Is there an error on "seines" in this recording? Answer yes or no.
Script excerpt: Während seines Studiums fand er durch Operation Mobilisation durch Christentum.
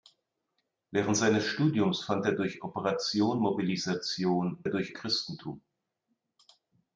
no